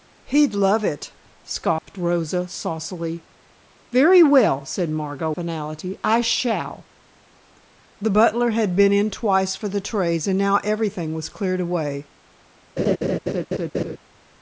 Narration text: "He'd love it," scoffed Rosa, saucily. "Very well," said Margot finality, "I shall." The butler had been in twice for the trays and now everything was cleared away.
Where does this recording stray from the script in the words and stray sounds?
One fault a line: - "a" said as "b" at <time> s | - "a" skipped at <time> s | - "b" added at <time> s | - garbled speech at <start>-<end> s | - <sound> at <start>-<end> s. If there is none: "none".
- dropout at 1.8-1.9 s
- laugh at 12.8-14.0 s